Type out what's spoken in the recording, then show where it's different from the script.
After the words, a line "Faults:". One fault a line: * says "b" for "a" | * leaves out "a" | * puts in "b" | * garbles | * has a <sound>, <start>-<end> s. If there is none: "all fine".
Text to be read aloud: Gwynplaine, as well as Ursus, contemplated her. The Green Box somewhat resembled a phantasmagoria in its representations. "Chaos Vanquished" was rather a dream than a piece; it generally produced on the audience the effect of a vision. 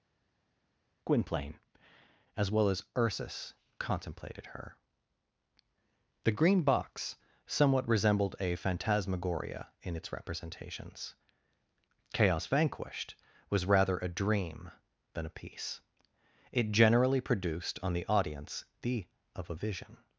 Gwynplaine, as well as Ursus, contemplated her. The Green Box somewhat resembled a phantasmagoria in its representations. "Chaos Vanquished" was rather a dream than a piece; it generally produced on the audience the of a vision.
Faults:
* leaves out "effect"